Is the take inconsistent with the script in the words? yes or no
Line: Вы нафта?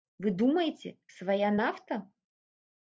yes